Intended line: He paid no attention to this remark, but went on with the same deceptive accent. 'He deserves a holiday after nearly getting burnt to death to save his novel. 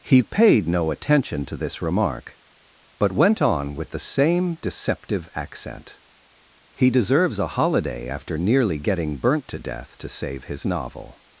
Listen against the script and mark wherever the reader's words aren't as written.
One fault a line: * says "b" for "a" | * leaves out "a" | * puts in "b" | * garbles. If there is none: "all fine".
all fine